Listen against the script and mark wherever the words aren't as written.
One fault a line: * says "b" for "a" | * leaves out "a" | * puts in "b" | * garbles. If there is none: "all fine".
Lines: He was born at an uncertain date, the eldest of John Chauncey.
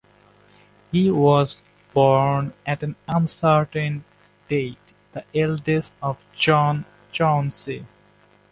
all fine